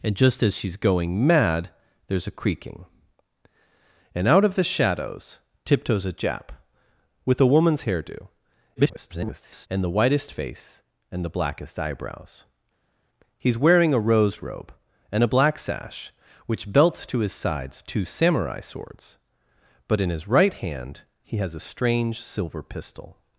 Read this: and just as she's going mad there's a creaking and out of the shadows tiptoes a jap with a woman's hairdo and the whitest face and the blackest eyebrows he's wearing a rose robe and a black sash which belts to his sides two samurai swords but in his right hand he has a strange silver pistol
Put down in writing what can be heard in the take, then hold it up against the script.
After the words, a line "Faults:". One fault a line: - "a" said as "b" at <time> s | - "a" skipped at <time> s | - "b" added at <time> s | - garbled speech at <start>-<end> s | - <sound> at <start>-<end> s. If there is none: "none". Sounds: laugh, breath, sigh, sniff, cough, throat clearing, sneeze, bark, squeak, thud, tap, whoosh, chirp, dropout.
and just as she's going mad there's a creaking and out of the shadows tiptoes a jap with a woman's hairdo [garbled] and the whitest face and the blackest eyebrows he's wearing a rose robe and a black sash which belts to his sides two samurai swords but in his right hand he has a strange silver pistol
Faults:
- garbled speech at 8.8-9.7 s